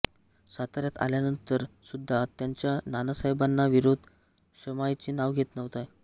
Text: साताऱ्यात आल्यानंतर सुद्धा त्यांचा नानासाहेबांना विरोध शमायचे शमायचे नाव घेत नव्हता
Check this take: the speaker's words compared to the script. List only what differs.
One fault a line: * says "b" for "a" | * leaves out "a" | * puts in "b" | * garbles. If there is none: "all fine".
* leaves out "शमायचे"